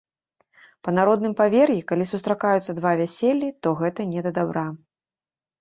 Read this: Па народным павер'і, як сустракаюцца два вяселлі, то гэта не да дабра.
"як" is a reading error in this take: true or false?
true